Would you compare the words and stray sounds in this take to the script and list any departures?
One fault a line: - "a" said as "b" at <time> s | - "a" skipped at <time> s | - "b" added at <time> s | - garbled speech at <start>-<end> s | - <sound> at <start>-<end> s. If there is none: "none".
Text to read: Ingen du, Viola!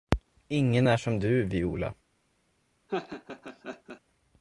- "är som" added at 0.9 s
- laugh at 2.9-4.0 s